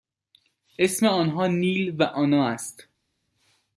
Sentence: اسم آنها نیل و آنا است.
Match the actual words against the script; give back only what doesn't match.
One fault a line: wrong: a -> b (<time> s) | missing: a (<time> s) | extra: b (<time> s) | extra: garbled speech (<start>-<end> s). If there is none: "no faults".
no faults